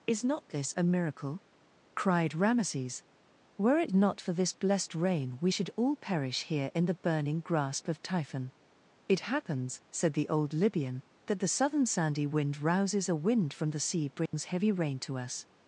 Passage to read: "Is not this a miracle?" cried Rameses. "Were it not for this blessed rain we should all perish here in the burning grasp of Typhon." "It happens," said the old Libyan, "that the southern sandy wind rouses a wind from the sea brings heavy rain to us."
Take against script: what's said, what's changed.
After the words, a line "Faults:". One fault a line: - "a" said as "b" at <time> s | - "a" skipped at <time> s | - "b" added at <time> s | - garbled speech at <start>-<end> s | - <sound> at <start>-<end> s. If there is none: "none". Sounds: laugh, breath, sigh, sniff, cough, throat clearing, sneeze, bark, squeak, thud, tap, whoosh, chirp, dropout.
"Is not this a miracle?" cried Rameses. "Were it not for this blessed rain we should all perish here in the burning grasp of Typhon." "It happens," said the old Libyan, "that the southern sandy wind rouses a wind from the sea brings heavy rain to us."
Faults:
- dropout at 14.3-14.3 s